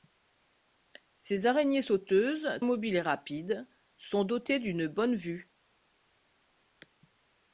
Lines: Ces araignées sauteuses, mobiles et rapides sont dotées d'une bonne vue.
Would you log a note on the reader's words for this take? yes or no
no